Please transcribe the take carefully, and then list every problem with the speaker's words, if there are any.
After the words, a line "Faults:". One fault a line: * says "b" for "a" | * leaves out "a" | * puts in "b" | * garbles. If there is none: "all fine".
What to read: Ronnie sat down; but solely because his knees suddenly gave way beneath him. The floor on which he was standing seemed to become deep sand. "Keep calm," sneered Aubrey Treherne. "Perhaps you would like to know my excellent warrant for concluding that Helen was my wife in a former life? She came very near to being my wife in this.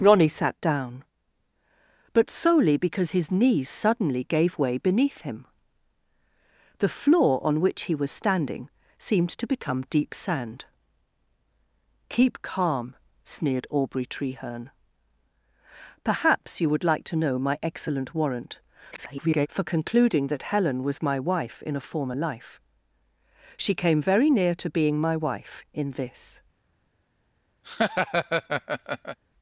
Ronnie sat down; but solely because his knees suddenly gave way beneath him. The floor on which he was standing seemed to become deep sand. "Keep calm," sneered Aubrey Treherne. "Perhaps you would like to know my excellent warrant [garbled] for concluding that Helen was my wife in a former life? She came very near to being my wife in this.
Faults:
* garbles